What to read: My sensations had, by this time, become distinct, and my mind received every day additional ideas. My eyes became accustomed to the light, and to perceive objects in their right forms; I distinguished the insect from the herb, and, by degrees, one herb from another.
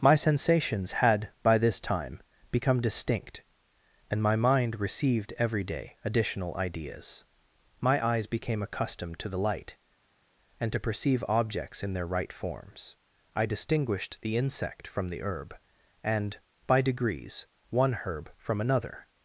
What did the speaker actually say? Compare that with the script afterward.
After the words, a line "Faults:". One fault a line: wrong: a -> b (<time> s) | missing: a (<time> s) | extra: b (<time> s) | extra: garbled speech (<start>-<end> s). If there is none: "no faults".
My sensations had, by this time, become distinct, and my mind received every day additional ideas. My eyes became accustomed to the light, and to perceive objects in their right forms; I distinguished the insect from the herb, and, by degrees, one herb from another.
Faults:
no faults